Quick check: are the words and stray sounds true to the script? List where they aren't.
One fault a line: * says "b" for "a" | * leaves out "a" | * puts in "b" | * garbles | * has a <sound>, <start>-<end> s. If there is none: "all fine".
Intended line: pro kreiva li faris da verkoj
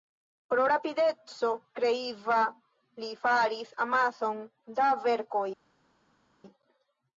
* puts in "rapideco"
* puts in "amason"